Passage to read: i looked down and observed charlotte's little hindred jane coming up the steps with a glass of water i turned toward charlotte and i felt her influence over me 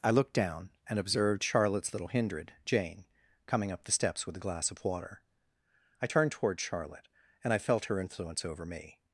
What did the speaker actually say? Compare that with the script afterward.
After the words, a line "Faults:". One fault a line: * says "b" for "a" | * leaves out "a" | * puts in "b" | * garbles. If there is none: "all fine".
i looked down and observed charlotte's little hindred jane coming up the steps with a glass of water i turned toward charlotte and i felt her influence over me
Faults:
all fine